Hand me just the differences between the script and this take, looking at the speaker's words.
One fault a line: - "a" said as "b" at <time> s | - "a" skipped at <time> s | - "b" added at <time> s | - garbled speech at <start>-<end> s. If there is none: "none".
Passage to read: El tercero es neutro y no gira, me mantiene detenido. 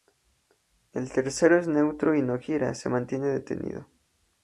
- "me" said as "se" at 2.7 s